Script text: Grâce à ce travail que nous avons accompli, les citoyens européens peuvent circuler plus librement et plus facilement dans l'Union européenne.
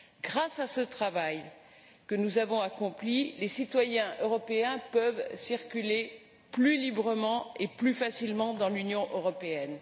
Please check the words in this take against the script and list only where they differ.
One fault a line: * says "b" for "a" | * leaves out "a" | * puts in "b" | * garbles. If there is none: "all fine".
all fine